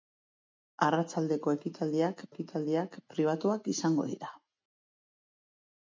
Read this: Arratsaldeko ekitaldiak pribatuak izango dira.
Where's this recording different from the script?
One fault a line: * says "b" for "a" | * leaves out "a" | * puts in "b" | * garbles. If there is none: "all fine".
* puts in "ekitaldiak"